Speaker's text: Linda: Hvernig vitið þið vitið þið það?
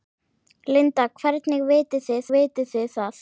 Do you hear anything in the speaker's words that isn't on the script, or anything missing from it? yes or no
no